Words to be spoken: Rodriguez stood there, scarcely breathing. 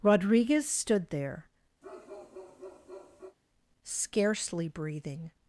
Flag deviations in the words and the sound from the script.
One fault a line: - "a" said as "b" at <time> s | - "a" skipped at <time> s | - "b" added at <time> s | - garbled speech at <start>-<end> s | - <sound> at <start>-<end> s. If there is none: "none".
- bark at 1.8-3.4 s